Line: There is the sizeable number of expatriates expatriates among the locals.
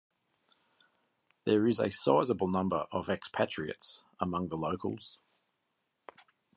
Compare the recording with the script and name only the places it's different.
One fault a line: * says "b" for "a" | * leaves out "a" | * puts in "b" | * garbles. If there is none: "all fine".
* says "a" for "the"
* leaves out "expatriates"